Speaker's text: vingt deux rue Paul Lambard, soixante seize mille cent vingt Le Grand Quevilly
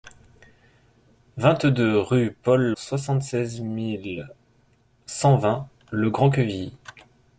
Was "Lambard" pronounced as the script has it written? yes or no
no